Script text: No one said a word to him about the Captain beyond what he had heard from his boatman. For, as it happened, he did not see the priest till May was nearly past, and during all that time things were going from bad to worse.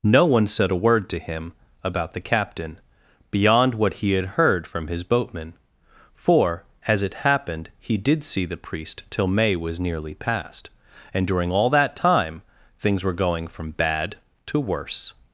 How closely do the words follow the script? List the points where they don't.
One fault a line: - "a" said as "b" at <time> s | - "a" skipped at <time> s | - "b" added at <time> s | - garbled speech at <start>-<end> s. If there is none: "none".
- "not" skipped at 8.2 s